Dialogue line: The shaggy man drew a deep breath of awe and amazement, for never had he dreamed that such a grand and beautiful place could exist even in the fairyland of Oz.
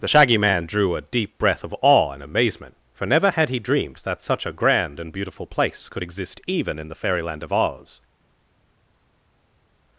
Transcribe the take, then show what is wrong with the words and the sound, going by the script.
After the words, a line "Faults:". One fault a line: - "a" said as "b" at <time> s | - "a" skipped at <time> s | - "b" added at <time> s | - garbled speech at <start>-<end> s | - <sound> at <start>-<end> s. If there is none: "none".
The shaggy man drew a deep breath of awe and amazement, for never had he dreamed that such a grand and beautiful place could exist even in the fairyland of Oz.
Faults:
none